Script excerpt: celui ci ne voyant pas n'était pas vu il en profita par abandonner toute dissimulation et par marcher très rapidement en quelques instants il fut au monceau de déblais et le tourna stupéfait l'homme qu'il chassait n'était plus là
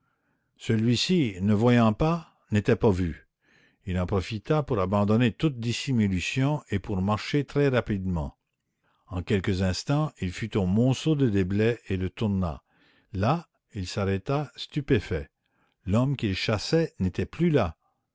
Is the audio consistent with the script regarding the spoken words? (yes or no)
no